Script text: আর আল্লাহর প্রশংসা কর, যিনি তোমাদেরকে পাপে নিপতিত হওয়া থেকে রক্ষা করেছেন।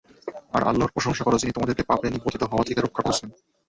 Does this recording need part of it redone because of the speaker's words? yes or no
no